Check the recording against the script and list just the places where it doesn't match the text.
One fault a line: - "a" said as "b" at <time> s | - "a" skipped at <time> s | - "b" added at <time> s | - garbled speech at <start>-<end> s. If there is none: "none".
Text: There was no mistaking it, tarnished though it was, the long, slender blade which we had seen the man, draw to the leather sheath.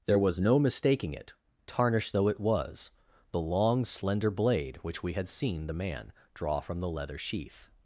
- "to" said as "from" at 6.6 s